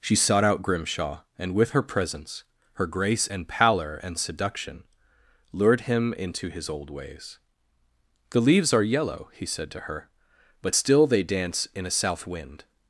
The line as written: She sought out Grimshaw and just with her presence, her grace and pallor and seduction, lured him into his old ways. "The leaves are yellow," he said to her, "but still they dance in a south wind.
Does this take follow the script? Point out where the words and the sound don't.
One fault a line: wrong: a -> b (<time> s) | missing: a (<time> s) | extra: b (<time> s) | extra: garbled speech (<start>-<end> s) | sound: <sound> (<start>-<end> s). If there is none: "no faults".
missing: just (1.5 s)